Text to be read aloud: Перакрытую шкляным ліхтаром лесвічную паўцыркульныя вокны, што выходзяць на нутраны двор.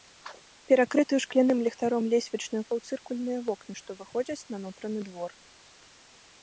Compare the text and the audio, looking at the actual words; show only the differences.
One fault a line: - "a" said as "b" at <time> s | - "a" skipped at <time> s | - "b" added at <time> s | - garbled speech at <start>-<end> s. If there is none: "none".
none